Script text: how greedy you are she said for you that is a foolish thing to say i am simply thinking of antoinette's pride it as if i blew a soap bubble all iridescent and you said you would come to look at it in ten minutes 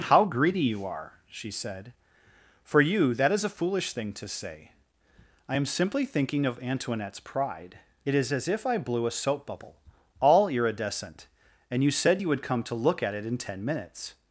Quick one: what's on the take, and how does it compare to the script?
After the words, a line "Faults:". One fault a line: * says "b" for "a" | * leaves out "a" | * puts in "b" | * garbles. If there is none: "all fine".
how greedy you are she said for you that is a foolish thing to say i am simply thinking of antoinette's pride it is as if i blew a soap bubble all iridescent and you said you would come to look at it in ten minutes
Faults:
* puts in "is"